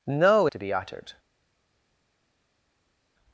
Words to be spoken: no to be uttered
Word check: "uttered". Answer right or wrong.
right